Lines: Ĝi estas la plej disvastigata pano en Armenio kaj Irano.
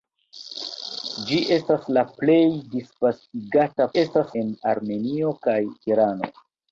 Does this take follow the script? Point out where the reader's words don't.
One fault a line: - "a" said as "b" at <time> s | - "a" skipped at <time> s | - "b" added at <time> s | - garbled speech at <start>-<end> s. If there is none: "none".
- "pano" said as "estas" at 4.0 s